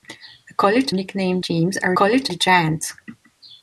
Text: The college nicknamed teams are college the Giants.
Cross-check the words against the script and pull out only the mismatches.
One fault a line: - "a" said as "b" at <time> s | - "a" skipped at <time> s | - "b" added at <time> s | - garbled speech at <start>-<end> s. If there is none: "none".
none